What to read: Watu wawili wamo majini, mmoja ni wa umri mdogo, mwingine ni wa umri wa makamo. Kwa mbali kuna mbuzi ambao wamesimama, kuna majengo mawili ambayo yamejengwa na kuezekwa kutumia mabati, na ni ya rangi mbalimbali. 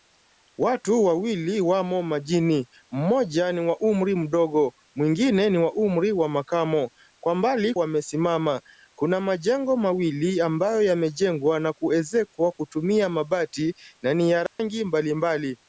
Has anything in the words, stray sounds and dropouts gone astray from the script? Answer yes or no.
yes